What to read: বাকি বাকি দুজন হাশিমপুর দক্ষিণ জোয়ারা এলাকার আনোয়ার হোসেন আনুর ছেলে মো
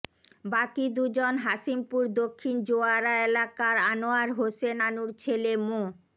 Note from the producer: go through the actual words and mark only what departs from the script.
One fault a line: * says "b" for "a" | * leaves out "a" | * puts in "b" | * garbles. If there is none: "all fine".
* leaves out "বাকি"